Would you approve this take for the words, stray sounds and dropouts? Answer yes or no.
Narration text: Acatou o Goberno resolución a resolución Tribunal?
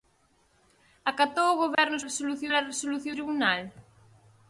no